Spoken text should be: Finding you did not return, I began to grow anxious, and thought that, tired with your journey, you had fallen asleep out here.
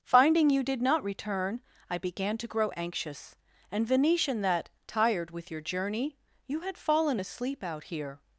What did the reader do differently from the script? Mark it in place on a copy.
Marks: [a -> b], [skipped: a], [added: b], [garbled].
Finding you did not return, I began to grow anxious, and [thought -> venetian] that, tired with your journey, you had fallen asleep out here.